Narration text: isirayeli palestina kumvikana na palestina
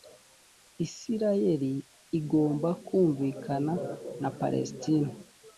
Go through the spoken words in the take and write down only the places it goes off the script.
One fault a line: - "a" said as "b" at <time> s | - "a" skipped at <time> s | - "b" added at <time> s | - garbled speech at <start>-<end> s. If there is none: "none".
- "palestina" said as "igomba" at 2.2 s